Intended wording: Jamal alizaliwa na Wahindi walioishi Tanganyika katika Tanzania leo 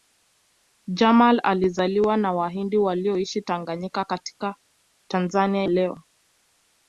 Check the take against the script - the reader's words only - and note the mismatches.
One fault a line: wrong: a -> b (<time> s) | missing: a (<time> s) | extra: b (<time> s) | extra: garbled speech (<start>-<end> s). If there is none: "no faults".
no faults